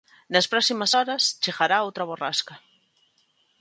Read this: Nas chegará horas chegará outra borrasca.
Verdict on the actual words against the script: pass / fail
fail